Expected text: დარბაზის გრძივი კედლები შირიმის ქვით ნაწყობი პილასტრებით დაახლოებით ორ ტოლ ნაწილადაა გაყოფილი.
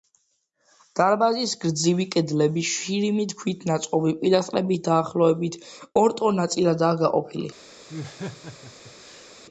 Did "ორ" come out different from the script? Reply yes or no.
no